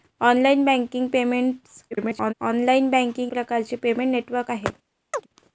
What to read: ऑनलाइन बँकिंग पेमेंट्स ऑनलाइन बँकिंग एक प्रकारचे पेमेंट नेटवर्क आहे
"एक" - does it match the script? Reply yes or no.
no